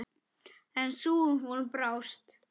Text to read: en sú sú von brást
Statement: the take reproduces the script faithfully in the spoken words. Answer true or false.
false